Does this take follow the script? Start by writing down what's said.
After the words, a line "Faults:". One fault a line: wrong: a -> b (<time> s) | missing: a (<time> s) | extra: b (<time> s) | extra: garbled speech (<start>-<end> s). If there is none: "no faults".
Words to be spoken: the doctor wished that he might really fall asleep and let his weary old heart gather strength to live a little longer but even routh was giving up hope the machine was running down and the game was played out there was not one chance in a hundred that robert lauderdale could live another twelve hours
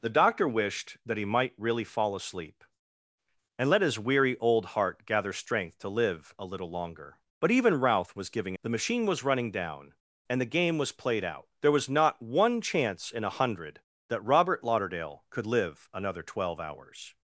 the doctor wished that he might really fall asleep and let his weary old heart gather strength to live a little longer but even routh was giving the machine was running down and the game was played out there was not one chance in a hundred that robert lauderdale could live another twelve hours
Faults:
missing: up hope (8.6 s)